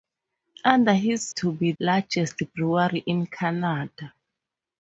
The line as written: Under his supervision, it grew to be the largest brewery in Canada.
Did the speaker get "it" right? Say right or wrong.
wrong